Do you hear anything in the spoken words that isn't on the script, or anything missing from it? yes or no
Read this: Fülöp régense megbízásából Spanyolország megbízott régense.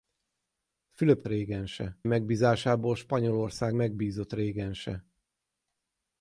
no